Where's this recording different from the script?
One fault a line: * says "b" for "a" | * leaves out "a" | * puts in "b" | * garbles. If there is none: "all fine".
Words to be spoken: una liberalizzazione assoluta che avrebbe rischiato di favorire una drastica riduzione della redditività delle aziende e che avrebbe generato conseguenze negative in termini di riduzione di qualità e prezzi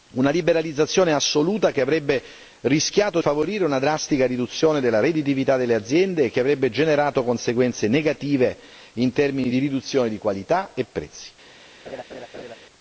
* leaves out "di"